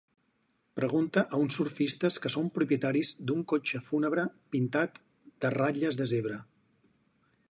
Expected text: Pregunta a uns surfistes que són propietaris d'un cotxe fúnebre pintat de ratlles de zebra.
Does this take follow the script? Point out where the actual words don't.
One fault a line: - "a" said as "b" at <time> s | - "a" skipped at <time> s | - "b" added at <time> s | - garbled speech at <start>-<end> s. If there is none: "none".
none